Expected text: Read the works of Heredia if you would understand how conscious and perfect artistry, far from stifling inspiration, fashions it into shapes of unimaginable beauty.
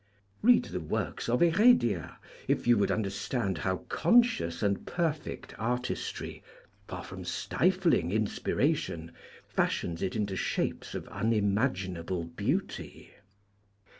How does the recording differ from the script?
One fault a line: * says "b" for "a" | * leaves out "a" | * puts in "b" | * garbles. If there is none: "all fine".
all fine